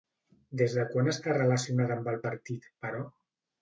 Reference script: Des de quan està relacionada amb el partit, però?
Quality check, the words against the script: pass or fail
pass